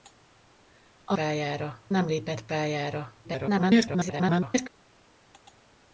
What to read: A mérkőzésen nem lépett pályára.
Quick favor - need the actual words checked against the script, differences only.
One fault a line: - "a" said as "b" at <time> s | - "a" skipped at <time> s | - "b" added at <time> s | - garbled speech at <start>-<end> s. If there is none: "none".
- "mérkőzésen" said as "pályára" at 1.1 s
- garbled speech at 3.2-4.7 s